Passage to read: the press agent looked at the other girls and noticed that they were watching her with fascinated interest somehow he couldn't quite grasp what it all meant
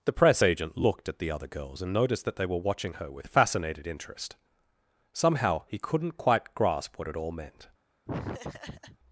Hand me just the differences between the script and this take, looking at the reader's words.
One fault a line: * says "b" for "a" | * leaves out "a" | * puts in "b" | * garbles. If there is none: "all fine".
all fine